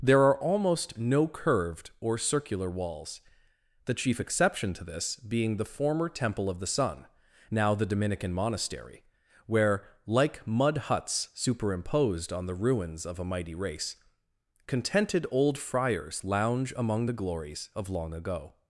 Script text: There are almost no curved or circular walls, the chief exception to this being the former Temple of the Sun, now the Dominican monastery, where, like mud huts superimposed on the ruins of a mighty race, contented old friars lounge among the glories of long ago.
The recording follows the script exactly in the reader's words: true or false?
true